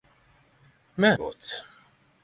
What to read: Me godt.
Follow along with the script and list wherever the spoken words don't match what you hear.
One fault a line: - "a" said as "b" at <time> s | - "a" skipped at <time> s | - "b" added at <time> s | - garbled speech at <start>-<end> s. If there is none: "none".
none